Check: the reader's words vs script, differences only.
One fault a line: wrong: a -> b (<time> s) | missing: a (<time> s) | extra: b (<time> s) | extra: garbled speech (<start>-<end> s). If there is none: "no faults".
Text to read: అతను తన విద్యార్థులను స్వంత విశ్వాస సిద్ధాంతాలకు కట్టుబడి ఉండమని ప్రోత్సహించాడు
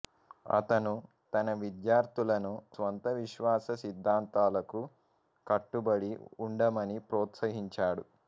no faults